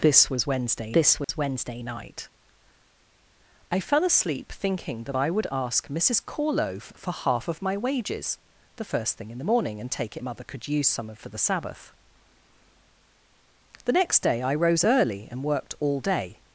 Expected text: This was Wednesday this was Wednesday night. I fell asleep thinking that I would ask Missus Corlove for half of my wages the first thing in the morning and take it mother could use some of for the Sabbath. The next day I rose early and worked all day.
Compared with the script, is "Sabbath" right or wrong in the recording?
right